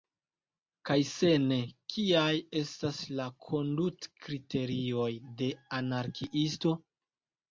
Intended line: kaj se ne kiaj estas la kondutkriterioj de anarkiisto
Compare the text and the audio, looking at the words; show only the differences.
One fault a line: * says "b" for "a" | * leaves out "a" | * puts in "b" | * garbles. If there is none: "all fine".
all fine